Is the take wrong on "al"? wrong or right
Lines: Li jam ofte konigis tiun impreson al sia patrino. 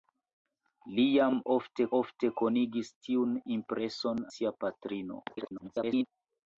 wrong